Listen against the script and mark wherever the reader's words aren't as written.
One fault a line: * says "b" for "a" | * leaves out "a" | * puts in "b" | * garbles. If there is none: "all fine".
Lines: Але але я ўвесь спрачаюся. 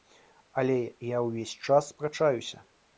* leaves out "але"
* puts in "час"